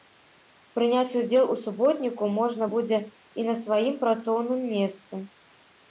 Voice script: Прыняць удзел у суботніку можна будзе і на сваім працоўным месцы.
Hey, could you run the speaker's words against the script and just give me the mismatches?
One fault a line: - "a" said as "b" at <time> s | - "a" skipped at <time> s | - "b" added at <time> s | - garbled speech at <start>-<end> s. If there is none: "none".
none